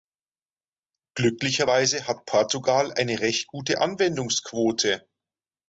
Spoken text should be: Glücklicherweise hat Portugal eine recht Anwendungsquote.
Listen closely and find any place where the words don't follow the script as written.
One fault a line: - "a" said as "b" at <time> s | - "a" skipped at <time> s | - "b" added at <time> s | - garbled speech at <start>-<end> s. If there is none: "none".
- "gute" added at 3.5 s